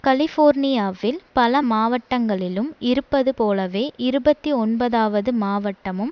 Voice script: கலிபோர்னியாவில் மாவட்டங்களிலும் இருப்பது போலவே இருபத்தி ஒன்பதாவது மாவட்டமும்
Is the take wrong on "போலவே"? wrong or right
right